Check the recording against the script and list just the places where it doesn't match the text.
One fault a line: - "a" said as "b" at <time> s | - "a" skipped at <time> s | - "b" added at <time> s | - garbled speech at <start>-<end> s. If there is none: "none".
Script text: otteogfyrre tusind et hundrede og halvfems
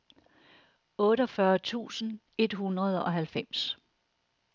none